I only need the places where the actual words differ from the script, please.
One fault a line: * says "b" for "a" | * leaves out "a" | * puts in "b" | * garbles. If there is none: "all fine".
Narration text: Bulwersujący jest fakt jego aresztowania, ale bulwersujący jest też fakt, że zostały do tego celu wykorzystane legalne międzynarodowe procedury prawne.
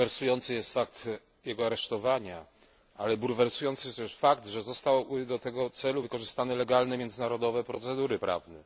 all fine